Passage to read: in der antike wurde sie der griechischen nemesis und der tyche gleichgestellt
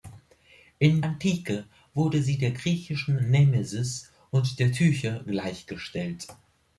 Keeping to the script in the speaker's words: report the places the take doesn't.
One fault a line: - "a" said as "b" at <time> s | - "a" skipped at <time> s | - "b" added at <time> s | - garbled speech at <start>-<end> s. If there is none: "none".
- "der" skipped at 1.0 s